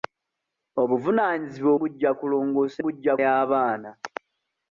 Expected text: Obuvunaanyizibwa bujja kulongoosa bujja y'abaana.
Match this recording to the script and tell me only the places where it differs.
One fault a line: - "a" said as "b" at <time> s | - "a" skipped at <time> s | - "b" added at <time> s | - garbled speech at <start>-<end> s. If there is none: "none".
none